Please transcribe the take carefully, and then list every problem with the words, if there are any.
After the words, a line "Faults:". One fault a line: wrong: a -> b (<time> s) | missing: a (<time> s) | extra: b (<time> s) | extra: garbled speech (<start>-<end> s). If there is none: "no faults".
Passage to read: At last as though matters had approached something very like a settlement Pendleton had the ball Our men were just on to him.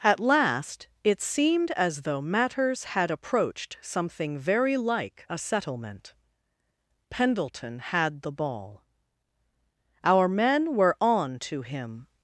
At last it seemed as though matters had approached something very like a settlement Pendleton had the ball Our men were on to him.
Faults:
extra: it seemed (1.0 s)
missing: just (11.0 s)